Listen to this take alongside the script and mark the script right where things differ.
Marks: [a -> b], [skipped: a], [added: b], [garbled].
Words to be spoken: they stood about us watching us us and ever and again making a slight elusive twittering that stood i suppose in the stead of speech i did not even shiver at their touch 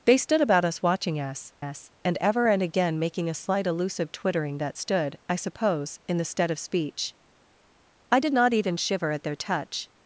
they stood about us watching us us and ever and again making a slight elusive twittering that stood i suppose in the stead of speech i did not even shiver at their touch